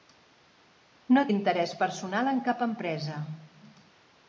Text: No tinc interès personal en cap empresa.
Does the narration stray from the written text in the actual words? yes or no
yes